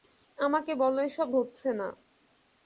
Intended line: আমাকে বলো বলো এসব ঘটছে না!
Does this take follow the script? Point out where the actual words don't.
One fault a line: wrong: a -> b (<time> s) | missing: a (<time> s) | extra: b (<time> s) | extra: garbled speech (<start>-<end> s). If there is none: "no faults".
missing: বলো (1.0 s)